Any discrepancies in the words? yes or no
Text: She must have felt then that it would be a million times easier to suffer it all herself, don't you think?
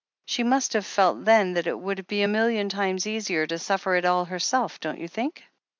no